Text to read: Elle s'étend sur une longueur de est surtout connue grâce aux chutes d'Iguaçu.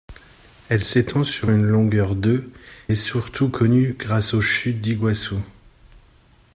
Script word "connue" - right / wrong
right